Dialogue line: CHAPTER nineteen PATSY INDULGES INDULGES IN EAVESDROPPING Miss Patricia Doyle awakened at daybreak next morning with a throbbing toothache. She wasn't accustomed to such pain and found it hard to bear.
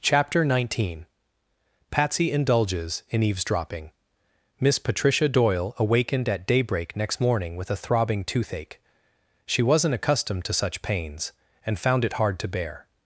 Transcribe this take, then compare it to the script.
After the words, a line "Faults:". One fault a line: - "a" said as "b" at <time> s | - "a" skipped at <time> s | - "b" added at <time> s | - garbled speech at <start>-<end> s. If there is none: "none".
CHAPTER nineteen PATSY INDULGES IN EAVESDROPPING Miss Patricia Doyle awakened at daybreak next morning with a throbbing toothache. She wasn't accustomed to such pains and found it hard to bear.
Faults:
- "INDULGES" skipped at 3.0 s
- "pain" said as "pains" at 10.8 s